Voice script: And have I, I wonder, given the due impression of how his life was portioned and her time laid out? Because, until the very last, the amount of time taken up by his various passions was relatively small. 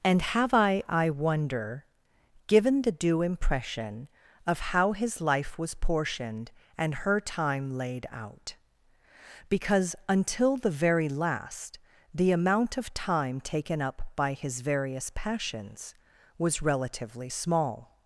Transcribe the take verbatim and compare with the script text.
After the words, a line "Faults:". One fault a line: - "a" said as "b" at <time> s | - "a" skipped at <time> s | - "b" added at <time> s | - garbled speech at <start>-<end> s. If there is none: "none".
And have I, I wonder, given the due impression of how his life was portioned and her time laid out? Because, until the very last, the amount of time taken up by his various passions was relatively small.
Faults:
none